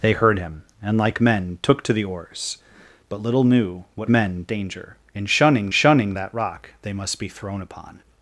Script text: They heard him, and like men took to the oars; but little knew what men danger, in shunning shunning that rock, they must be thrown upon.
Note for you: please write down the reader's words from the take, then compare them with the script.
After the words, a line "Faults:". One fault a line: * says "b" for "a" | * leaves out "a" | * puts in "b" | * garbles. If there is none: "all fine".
They heard him, and like men took to the oars; but little knew what men danger, in shunning shunning that rock, they must be thrown upon.
Faults:
all fine